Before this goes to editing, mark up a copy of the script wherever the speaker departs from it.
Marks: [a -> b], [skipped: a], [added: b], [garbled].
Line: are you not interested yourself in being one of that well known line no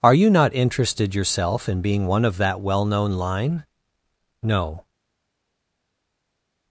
are you not interested yourself in being one of that well known line no